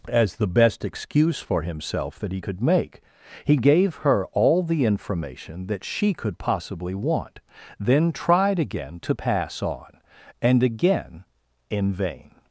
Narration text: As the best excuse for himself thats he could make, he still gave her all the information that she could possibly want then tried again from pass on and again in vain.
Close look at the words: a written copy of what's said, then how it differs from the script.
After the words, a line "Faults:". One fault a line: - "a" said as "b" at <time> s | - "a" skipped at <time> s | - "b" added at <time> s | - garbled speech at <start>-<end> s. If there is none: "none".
As the best excuse for himself that he could make, he gave her all the information that she could possibly want then tried again to pass on and again in vain.
Faults:
- "thats" said as "that" at 2.2 s
- "still" skipped at 3.6 s
- "from" said as "to" at 9.0 s